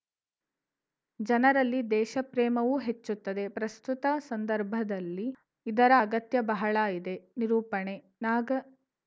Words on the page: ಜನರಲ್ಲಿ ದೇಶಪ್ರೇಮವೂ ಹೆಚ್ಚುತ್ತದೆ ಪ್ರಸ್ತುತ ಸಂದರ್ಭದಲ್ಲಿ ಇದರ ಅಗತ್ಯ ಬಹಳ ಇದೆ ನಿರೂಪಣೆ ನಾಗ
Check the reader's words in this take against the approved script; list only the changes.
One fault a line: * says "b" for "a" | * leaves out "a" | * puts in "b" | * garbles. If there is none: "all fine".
all fine